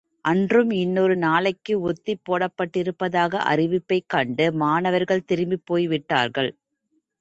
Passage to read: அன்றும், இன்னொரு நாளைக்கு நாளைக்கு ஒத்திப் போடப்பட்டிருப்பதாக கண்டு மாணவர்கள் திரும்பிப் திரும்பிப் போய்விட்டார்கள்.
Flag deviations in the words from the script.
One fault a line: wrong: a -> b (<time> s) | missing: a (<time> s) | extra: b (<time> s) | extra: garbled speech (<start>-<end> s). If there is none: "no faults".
missing: நாளைக்கு (1.7 s)
extra: அறிவிப்பைக் (3.5 s)
missing: திரும்பிப் (5.7 s)